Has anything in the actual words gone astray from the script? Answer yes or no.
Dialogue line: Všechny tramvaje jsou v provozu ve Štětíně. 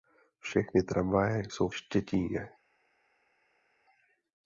yes